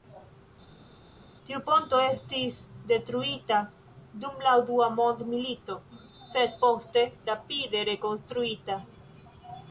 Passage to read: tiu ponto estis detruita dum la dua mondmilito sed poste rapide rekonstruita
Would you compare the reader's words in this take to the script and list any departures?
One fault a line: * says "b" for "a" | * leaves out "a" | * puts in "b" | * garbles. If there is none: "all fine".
all fine